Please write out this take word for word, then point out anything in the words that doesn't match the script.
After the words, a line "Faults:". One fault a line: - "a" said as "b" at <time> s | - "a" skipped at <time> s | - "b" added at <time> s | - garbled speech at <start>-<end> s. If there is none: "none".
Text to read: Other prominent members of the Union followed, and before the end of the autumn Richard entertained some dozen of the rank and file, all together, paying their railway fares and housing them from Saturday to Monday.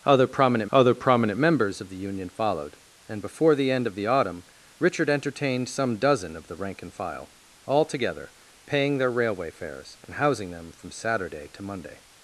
Other prominent other prominent members of the Union followed, and before the end of the autumn Richard entertained some dozen of the rank and file, all together, paying their railway fares and housing them from Saturday to Monday.
Faults:
- "other prominent" added at 0.7 s